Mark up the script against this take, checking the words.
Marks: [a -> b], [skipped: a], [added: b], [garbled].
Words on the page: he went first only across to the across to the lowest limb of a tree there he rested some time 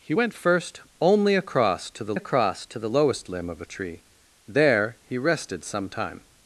he went first only across to the across to the lowest limb of a tree there he rested some time